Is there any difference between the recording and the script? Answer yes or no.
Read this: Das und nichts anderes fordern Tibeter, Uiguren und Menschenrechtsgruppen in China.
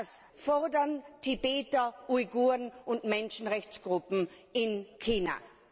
yes